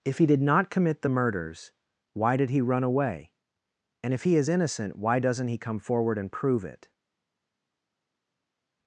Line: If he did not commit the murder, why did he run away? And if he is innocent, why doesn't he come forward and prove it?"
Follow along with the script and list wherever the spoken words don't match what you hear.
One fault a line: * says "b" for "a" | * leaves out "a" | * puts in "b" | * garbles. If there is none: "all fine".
* says "murders" for "murder"